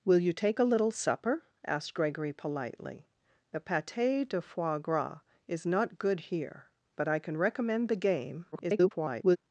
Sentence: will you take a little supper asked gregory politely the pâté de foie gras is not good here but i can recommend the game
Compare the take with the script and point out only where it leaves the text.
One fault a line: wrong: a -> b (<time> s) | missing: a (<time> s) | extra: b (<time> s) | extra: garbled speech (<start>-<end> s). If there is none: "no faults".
extra: garbled speech (8.5-9.4 s)